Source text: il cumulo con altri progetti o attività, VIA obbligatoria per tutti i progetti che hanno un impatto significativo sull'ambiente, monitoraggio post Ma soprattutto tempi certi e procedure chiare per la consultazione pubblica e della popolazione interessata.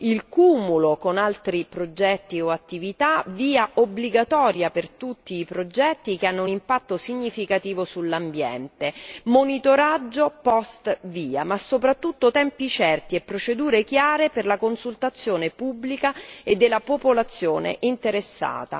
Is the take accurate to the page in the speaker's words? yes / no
no